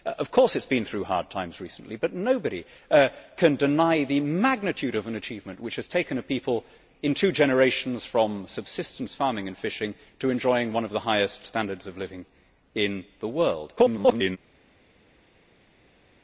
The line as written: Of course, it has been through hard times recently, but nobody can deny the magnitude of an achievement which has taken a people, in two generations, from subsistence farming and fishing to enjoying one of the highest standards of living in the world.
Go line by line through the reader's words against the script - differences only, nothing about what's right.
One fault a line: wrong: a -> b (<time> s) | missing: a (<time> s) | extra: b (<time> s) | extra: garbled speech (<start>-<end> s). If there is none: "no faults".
extra: garbled speech (13.8-14.4 s)